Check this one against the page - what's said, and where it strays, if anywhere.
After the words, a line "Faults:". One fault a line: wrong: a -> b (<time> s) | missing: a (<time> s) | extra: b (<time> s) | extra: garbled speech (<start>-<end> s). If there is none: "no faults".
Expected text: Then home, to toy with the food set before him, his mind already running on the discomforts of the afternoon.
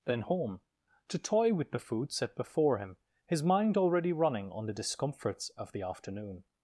Then home, to toy with the food set before him, his mind already running on the discomforts of the afternoon.
Faults:
no faults